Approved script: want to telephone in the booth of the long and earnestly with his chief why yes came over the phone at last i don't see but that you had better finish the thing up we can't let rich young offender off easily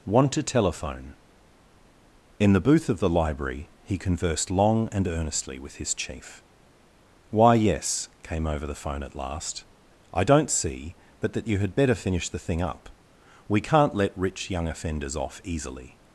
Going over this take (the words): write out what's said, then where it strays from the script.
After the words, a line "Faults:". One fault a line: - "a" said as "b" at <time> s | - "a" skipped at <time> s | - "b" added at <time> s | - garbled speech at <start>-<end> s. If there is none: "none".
want to telephone in the booth of the library he conversed long and earnestly with his chief why yes came over the phone at last i don't see but that you had better finish the thing up we can't let rich young offenders off easily
Faults:
- "library he conversed" added at 3.1 s
- "offender" said as "offenders" at 14.7 s